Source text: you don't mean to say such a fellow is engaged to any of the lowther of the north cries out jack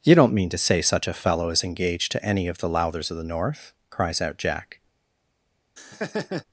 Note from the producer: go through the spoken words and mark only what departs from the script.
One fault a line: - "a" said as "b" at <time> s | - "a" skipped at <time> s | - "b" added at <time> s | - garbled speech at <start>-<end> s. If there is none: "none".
- "lowther" said as "lowthers" at 2.7 s